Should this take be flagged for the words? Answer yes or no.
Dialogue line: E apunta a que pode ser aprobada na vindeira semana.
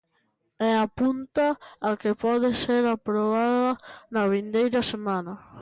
no